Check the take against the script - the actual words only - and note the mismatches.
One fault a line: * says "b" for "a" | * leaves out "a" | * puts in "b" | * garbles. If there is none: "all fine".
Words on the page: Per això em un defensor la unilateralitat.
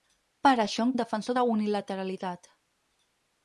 all fine